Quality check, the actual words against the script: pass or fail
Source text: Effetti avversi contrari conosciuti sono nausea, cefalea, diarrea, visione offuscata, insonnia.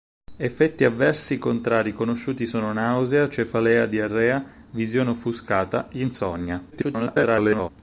fail